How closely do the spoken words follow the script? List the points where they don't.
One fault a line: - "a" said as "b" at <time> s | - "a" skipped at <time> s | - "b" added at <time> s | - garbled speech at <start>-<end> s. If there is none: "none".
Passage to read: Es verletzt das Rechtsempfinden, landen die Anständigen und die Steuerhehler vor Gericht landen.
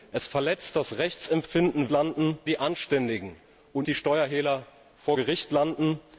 none